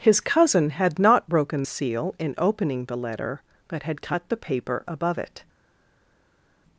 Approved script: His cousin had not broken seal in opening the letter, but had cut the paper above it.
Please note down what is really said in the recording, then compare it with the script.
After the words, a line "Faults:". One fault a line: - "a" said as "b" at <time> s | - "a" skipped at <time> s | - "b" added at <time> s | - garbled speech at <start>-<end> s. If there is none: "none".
His cousin had not broken seal in opening the letter, but had cut the paper above it.
Faults:
none